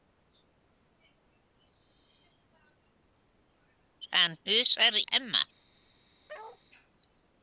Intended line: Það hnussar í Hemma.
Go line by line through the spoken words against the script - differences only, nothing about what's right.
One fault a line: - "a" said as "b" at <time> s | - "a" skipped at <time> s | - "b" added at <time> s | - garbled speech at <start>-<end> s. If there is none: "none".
- "í" skipped at 5.0 s